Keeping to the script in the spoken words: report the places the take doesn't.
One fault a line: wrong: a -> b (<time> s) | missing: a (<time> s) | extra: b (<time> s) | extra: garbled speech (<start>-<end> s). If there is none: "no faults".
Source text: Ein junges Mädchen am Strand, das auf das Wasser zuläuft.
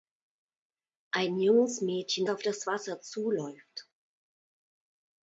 missing: am Strand das (2.3 s)